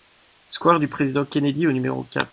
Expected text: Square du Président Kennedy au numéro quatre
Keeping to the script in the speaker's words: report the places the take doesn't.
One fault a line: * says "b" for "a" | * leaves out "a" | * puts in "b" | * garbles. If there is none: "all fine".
all fine